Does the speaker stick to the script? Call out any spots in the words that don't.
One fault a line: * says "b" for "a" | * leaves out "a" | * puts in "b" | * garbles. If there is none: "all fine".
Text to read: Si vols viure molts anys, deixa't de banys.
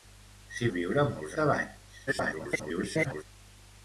* leaves out "vols"
* leaves out "anys deixa't"
* garbles